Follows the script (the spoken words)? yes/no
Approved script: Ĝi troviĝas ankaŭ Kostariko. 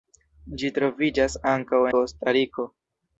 yes